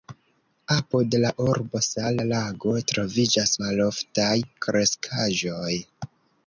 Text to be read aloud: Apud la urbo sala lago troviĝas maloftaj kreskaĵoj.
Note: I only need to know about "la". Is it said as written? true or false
true